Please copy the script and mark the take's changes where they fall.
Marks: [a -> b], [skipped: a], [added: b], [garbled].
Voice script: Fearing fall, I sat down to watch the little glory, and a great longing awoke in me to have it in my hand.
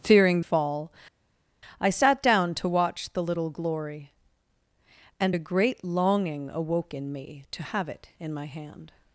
Fearing fall, I sat down to watch the little glory, and a great longing awoke in me to have it in my hand.